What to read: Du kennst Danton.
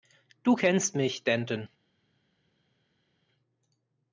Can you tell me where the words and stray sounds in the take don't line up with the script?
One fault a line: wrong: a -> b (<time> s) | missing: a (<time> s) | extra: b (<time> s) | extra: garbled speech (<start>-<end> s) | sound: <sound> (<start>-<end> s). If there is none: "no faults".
extra: mich (1.0 s)